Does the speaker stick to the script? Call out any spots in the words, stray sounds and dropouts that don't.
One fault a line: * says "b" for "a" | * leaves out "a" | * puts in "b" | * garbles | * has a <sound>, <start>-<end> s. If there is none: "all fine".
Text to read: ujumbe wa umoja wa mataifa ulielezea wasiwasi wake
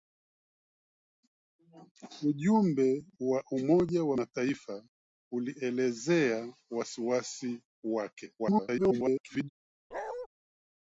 * garbles
* has a bark, 9.9-10.3 s